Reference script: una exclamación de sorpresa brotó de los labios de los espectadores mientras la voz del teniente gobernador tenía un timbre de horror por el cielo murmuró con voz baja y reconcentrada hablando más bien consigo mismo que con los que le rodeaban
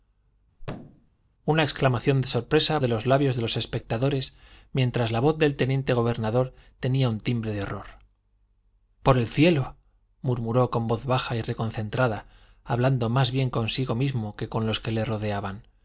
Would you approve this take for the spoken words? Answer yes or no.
no